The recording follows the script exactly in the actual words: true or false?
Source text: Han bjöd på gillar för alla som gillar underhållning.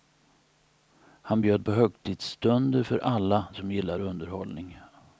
false